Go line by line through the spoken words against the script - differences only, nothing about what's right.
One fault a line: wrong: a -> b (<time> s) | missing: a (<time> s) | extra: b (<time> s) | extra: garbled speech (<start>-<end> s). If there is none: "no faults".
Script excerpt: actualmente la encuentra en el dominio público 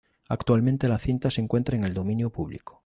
extra: cinta se (1.0 s)